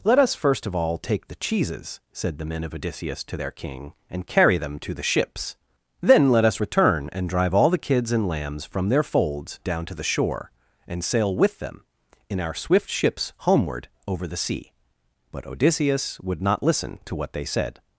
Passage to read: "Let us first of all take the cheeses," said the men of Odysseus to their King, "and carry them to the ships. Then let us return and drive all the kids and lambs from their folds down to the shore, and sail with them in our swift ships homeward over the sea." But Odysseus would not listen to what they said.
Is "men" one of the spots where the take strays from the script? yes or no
no